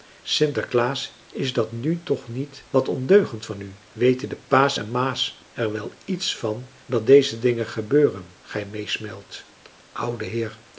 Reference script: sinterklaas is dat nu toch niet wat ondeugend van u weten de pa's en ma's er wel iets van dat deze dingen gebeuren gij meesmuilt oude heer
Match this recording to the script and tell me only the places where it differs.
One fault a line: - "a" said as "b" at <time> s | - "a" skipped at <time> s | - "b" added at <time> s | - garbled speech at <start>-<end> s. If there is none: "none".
none